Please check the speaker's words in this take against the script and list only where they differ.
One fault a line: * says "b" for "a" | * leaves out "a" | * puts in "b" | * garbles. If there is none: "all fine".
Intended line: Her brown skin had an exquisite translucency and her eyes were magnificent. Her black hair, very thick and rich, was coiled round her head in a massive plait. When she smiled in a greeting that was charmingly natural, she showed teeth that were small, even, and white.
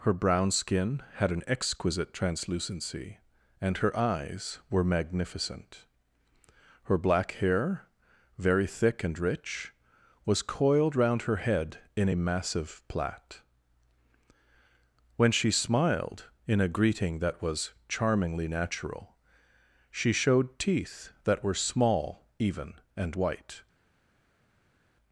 all fine